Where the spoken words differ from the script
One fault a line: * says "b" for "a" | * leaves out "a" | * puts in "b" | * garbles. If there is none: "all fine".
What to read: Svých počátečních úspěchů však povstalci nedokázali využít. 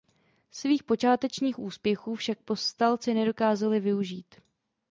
all fine